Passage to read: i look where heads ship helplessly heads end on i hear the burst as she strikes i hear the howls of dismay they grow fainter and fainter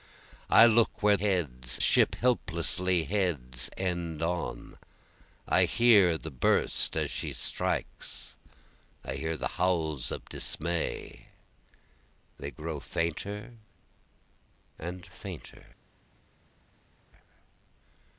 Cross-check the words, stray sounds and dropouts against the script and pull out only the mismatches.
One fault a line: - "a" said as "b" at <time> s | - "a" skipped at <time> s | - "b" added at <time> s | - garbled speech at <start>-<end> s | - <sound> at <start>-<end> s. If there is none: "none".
none